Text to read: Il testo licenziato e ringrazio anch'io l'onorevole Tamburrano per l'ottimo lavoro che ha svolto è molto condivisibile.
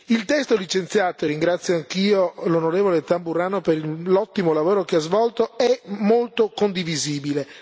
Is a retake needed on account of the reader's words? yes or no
no